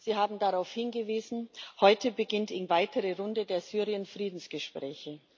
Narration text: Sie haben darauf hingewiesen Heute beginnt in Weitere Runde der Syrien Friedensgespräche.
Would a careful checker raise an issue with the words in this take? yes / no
no